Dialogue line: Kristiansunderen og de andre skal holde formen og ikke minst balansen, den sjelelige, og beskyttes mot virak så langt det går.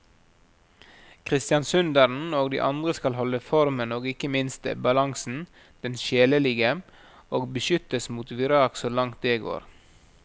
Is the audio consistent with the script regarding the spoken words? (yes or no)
yes